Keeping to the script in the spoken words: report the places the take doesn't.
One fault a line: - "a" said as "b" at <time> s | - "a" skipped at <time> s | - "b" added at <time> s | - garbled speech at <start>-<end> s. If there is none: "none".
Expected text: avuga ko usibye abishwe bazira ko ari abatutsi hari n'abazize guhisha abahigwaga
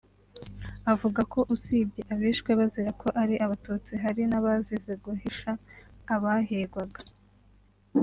none